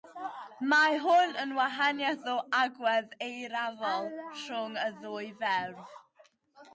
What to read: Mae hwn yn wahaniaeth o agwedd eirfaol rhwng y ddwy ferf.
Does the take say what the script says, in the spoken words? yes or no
yes